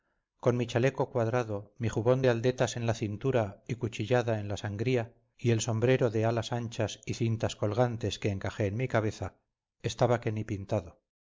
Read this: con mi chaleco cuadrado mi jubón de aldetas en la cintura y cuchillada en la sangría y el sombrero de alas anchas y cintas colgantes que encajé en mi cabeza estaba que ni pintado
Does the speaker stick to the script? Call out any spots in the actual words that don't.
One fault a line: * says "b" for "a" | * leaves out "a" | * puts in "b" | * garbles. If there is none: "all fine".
all fine